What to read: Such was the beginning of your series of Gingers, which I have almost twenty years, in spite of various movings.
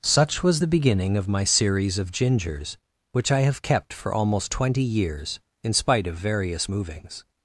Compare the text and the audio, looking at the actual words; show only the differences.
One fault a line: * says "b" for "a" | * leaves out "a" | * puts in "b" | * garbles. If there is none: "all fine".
* says "my" for "your"
* puts in "kept for"